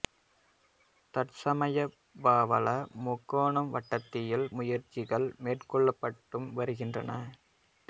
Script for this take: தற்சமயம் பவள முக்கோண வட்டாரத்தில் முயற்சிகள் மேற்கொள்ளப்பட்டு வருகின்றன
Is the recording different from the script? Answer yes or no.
no